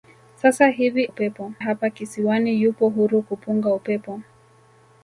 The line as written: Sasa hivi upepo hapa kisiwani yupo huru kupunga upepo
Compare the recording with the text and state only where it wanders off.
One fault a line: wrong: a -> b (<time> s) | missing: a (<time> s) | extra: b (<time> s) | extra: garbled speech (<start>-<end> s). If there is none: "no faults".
no faults